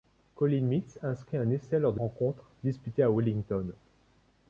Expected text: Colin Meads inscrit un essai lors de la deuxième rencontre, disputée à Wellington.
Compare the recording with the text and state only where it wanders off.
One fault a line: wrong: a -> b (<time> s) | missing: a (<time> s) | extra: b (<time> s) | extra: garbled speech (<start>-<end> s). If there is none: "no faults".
missing: la deuxième (2.0 s)